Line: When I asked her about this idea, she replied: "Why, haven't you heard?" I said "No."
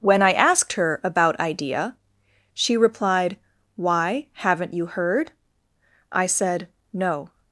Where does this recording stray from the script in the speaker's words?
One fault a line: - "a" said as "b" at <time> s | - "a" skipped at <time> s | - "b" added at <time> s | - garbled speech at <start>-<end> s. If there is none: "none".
- "this" skipped at 1.4 s